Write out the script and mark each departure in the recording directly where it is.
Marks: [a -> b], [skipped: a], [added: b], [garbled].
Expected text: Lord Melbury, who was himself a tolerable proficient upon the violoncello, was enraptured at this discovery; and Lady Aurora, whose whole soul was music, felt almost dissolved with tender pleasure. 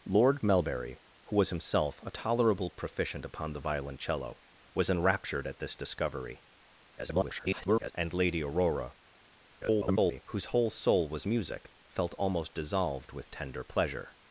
Lord Melbury, who was himself a tolerable proficient upon the violoncello, was enraptured at this discovery; [garbled] and Lady Aurora, [garbled] whose whole soul was music, felt almost dissolved with tender pleasure.